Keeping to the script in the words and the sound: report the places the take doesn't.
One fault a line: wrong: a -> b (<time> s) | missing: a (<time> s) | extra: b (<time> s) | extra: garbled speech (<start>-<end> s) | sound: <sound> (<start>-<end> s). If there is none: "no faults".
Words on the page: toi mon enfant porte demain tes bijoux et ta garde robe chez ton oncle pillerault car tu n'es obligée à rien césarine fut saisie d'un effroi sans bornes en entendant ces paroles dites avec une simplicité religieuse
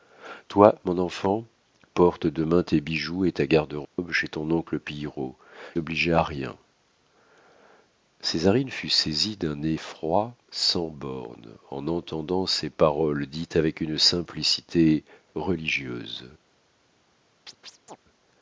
sound: dropout (3.8-4.0 s)
missing: car tu n'es (5.3 s)
sound: chirp (17.5-18.0 s)